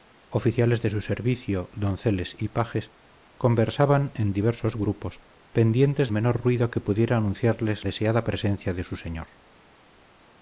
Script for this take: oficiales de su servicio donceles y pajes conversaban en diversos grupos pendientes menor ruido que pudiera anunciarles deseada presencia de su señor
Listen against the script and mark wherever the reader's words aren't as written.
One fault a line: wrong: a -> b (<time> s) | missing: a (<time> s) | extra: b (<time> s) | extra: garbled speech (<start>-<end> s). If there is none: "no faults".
no faults